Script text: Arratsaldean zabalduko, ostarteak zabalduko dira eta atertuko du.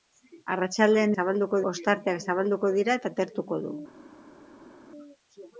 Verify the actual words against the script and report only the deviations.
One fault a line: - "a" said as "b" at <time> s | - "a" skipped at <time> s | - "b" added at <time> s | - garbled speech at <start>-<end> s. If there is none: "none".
none